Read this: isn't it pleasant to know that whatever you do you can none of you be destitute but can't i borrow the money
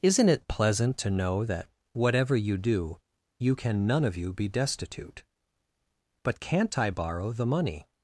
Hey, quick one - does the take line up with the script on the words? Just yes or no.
yes